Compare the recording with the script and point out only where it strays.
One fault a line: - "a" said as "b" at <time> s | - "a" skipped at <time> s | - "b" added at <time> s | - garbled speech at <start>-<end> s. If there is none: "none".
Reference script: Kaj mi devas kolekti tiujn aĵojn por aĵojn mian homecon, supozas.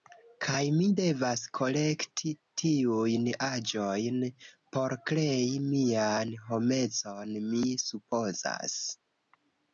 - "aĵojn" said as "krei" at 5.1 s
- "mi" added at 7.5 s